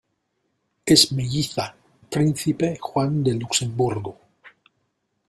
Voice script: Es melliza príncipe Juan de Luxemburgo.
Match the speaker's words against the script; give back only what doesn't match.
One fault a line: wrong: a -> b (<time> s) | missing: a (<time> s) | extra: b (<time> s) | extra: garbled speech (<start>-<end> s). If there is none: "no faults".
no faults